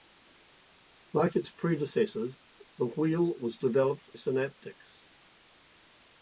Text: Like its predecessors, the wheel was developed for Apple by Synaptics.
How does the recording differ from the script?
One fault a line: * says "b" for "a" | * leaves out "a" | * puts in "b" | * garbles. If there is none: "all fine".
* leaves out "for Apple by"